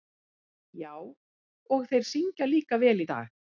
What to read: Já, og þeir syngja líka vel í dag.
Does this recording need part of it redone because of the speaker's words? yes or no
no